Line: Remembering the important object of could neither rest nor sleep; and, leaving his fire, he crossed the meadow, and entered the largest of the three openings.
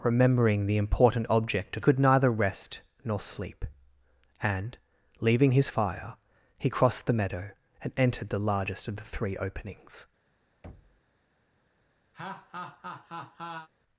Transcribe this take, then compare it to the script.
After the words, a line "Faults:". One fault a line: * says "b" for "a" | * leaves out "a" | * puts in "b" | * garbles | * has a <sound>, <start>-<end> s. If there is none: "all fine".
Remembering the important object of could neither rest nor sleep; and, leaving his fire, he crossed the meadow, and entered the largest of the three openings.
Faults:
* has a thud, 10.6-11.0 s
* has a laugh, 12.1-13.7 s